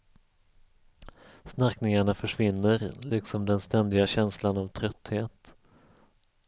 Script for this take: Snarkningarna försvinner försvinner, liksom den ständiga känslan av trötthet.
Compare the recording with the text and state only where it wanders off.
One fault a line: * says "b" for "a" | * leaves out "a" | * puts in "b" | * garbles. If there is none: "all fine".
* leaves out "försvinner"